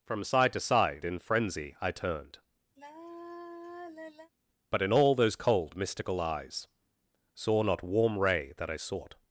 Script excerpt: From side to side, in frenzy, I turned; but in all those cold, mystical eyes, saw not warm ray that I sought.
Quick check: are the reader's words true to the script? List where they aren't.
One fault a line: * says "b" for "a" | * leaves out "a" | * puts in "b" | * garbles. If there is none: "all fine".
all fine